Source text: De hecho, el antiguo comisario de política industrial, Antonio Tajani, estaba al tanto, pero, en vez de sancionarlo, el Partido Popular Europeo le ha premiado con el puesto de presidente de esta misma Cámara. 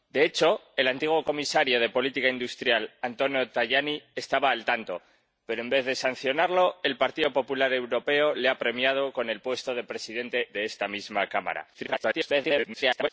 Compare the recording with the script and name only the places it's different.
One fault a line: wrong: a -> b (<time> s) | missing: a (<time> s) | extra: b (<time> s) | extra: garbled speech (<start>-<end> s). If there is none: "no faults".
extra: garbled speech (11.7-13.1 s)